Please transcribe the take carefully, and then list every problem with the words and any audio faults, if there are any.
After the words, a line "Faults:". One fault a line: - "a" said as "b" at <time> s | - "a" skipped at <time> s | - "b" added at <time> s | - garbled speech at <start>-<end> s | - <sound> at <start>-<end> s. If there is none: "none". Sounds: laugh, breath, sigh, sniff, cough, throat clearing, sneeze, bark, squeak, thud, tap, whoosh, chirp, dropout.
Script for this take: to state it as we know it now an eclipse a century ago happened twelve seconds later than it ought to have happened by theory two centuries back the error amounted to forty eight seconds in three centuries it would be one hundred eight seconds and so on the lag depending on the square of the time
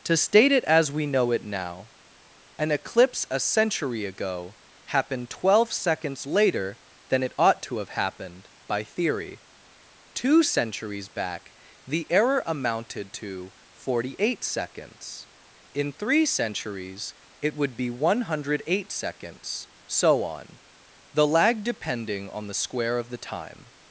to state it as we know it now an eclipse a century ago happened twelve seconds later than it ought to have happened by theory two centuries back the error amounted to forty eight seconds in three centuries it would be one hundred eight seconds so on the lag depending on the square of the time
Faults:
- "and" skipped at 19.7 s